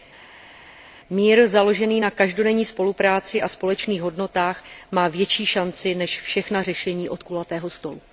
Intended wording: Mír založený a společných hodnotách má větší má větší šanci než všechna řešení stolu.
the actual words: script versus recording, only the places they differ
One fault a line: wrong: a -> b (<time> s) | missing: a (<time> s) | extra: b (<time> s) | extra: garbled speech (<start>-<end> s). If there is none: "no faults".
extra: na každodenní spolupráci (2.0 s)
missing: má větší (5.5 s)
extra: od kulatého (7.1 s)